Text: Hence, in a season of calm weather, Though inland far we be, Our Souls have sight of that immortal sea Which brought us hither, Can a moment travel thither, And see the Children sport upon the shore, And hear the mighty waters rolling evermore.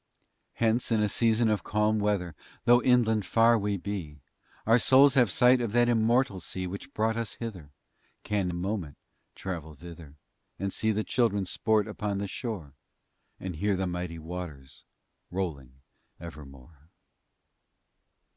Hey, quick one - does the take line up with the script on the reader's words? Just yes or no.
yes